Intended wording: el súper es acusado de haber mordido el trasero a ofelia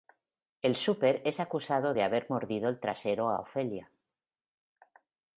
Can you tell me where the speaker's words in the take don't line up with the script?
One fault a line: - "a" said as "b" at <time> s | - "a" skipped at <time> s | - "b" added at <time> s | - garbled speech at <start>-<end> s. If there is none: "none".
none